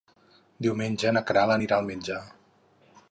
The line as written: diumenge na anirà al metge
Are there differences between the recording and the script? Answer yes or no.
yes